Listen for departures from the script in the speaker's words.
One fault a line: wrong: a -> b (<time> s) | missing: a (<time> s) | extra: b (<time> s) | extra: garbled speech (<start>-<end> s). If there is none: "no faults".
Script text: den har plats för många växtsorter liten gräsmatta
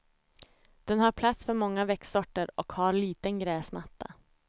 extra: och har (2.5 s)